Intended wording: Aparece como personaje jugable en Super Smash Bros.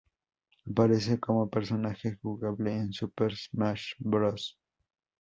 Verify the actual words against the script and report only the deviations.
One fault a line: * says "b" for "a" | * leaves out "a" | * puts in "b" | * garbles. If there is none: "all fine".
all fine